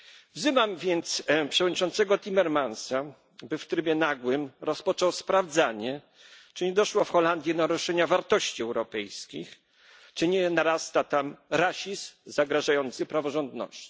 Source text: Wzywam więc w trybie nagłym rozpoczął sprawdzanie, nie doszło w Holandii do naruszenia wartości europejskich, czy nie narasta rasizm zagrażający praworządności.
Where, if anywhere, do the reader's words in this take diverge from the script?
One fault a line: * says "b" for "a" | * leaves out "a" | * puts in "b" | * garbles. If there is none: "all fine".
* puts in "przewodniczącego Timmermansa by"
* puts in "czy"
* puts in "tam"